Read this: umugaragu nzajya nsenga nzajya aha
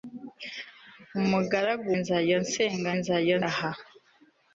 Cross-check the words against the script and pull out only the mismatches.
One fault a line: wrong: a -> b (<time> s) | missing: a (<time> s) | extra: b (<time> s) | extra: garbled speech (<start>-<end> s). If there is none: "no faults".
no faults